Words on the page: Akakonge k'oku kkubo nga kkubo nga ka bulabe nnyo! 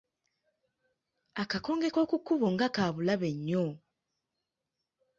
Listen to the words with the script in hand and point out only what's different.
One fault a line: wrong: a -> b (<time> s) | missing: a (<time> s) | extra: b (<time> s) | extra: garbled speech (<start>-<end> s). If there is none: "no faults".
missing: kkubo nga (2.7 s)